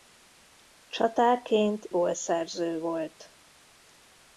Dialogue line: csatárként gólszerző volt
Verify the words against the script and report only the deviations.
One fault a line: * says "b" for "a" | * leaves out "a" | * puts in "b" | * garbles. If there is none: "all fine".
all fine